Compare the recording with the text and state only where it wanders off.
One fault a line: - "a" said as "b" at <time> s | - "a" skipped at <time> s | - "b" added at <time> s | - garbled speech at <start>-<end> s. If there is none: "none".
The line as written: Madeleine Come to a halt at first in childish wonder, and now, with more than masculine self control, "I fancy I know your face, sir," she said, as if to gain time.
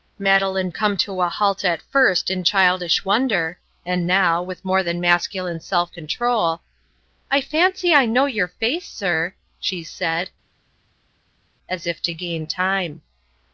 none